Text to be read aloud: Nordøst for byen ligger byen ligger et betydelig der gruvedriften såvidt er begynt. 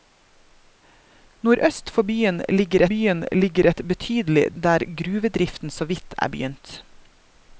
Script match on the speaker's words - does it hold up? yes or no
yes